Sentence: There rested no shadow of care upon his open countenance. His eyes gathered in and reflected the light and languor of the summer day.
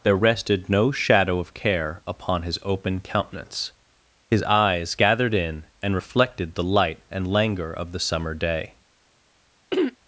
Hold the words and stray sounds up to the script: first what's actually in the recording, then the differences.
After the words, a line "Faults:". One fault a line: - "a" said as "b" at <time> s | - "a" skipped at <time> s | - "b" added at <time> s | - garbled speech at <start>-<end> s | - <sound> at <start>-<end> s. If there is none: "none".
There rested no shadow of care upon his open countenance. His eyes gathered in and reflected the light and languor of the summer day.
Faults:
- throat clearing at 9.7-10.0 s